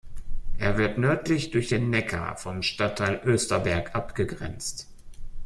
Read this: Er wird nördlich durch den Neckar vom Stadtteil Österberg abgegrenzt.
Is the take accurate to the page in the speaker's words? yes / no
yes